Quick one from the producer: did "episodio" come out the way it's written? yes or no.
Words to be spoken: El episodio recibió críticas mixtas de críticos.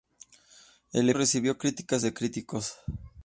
no